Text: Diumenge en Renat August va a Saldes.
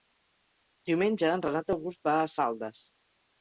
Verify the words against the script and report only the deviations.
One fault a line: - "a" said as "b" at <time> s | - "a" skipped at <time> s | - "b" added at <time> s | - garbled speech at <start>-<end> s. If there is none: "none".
none